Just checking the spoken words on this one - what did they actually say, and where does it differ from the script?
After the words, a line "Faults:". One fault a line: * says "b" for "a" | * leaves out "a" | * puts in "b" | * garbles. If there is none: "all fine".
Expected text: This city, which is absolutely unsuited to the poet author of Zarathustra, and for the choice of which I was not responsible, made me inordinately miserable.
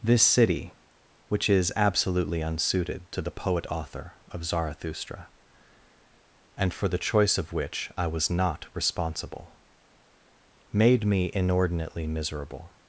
This city, which is absolutely unsuited to the poet author of Zarathustra, and for the choice of which I was not responsible, made me inordinately miserable.
Faults:
all fine